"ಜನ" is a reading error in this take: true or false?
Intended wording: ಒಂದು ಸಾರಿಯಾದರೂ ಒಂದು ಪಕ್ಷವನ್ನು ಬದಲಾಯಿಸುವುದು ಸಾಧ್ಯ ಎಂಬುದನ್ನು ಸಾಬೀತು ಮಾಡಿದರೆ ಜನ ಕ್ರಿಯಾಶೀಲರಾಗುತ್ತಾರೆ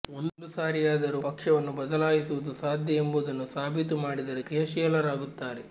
true